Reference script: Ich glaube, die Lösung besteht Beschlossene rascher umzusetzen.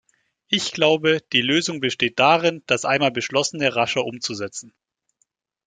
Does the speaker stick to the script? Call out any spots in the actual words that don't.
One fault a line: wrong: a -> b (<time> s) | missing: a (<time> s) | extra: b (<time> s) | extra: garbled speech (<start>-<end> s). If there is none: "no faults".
extra: darin das einmal (2.2 s)